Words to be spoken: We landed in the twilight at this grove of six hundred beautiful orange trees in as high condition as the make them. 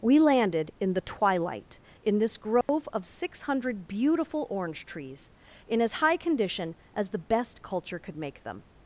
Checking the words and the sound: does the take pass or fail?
fail